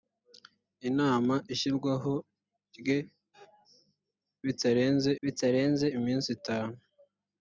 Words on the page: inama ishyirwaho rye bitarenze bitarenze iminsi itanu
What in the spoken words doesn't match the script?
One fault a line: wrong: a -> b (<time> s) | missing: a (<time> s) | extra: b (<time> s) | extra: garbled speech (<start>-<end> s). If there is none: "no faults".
no faults